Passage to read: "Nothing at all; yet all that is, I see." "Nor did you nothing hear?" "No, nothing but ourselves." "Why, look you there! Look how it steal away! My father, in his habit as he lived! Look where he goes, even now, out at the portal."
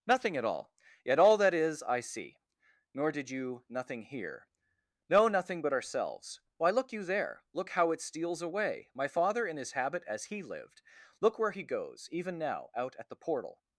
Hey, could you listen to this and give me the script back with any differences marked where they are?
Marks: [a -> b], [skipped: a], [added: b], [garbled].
"Nothing at all; yet all that is, I see." "Nor did you nothing hear?" "No, nothing but ourselves." "Why, look you there! Look how it [steal -> steals] away! My father, in his habit as he lived! Look where he goes, even now, out at the portal."